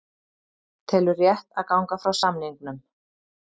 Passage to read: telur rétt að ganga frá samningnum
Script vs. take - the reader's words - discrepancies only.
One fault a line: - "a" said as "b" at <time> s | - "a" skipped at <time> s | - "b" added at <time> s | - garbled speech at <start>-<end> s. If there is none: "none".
none